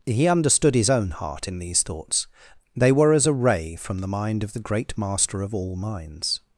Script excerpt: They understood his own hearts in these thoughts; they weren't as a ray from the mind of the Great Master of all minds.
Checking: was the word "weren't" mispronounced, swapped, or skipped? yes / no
yes